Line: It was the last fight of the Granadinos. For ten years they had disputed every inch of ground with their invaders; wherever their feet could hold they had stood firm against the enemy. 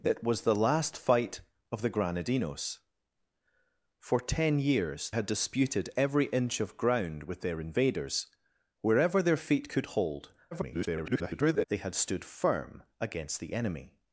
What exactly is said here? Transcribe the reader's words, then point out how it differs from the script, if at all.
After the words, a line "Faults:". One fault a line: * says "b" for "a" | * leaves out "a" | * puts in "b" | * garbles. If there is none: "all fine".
It was the last fight of the Granadinos. For ten years had disputed every inch of ground with their invaders; wherever their feet could hold [garbled] they had stood firm against the enemy.
Faults:
* leaves out "they"
* garbles